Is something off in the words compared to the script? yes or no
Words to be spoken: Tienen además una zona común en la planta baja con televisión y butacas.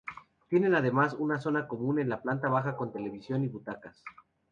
no